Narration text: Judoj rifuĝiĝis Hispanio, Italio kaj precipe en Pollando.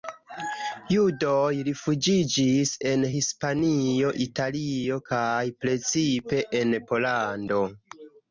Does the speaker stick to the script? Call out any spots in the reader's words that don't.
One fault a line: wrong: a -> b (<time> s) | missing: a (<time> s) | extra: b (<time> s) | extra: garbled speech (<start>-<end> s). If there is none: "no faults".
extra: en (2.9 s)